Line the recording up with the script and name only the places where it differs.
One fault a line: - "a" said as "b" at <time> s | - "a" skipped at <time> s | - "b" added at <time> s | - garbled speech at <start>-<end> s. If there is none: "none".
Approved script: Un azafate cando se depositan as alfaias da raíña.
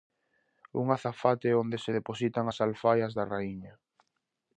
- "cando" said as "onde" at 1.6 s